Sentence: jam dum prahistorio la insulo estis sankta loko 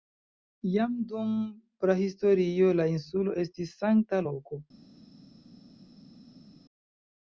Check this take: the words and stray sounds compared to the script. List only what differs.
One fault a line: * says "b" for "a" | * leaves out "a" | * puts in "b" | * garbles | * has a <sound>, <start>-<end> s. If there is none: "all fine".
all fine